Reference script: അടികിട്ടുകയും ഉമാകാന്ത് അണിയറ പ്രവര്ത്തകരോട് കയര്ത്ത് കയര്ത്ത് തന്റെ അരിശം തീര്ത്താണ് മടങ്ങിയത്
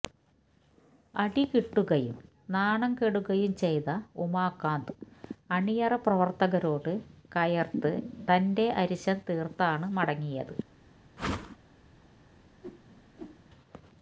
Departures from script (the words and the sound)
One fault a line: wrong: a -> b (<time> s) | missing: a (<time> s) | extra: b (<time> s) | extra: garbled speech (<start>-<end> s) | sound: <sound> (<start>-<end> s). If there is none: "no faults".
extra: നാണം കെടുകയും ചെയ്ത (2.5 s)
missing: കയര്ത്ത് (7.9 s)
sound: whoosh (11.2-11.6 s)
sound: whoosh (12.6-13.4 s)